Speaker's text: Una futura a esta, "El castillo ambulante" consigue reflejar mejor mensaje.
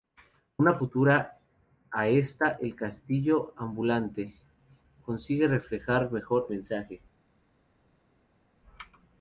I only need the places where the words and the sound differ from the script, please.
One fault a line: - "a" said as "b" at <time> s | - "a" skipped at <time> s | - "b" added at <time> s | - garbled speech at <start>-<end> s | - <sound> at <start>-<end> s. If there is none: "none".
none